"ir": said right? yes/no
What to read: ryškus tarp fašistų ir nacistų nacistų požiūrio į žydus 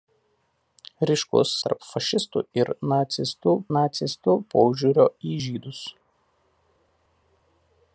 yes